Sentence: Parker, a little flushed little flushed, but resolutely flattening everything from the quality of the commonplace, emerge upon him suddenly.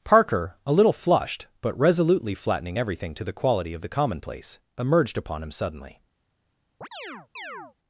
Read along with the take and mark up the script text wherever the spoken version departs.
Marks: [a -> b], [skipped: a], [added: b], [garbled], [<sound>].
Parker, a little flushed [skipped: little flushed,] but resolutely flattening everything [from -> to] the quality of the commonplace, [emerge -> emerged] upon him suddenly. [chirp]